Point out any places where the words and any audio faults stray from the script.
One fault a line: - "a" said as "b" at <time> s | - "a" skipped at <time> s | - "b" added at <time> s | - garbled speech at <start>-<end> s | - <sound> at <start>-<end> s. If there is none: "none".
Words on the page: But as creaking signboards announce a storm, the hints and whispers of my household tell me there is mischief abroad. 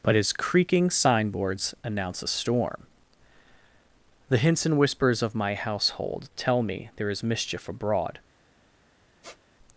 - "as" said as "his" at 0.1 s
- squeak at 9.2-9.4 s